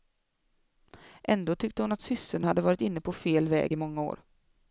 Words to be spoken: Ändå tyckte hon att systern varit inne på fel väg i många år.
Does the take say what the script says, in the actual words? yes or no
no